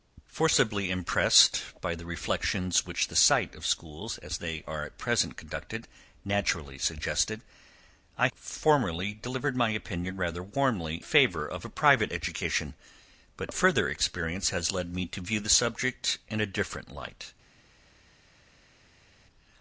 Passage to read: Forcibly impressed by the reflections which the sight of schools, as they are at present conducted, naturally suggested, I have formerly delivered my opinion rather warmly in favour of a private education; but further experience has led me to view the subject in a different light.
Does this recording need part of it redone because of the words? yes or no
yes